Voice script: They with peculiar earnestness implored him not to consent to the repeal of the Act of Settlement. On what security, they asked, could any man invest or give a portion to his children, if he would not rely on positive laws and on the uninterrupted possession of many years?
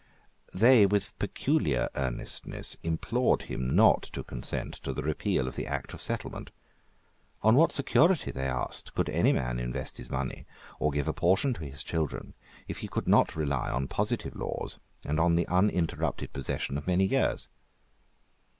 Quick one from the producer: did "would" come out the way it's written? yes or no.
no